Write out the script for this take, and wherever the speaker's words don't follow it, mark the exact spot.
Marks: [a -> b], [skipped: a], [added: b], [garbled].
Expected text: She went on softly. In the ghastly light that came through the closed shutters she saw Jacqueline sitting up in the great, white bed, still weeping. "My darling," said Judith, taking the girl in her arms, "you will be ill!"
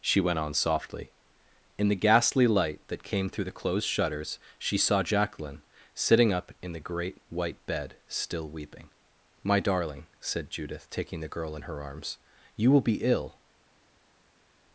She went on softly. In the ghastly light that came through the closed shutters she saw Jacqueline sitting up in the great, white bed, still weeping. "My darling," said Judith, taking the girl in her arms, "you will be ill!"